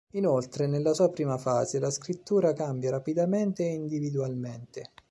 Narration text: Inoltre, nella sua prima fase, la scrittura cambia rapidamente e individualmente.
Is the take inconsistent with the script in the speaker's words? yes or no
no